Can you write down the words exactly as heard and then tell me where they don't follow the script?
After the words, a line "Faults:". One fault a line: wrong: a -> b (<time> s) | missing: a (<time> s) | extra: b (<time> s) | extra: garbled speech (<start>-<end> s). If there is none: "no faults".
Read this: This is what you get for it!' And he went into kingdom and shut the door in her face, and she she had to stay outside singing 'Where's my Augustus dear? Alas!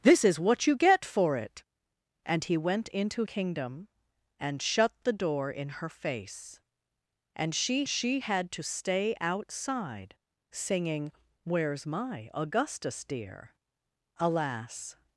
This is what you get for it!' And he went into kingdom and shut the door in her face, and she she had to stay outside singing 'Where's my Augustus dear? Alas!
Faults:
no faults